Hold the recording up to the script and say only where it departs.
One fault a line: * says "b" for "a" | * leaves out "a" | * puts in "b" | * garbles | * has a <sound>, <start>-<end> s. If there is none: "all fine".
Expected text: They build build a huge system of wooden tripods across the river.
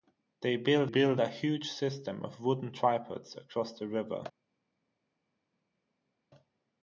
all fine